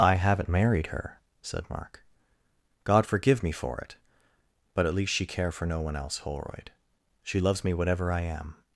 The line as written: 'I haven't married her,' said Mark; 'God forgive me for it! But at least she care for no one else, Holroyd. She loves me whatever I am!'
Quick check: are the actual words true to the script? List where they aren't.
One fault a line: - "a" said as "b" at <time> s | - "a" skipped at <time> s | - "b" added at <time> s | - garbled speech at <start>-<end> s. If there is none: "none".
none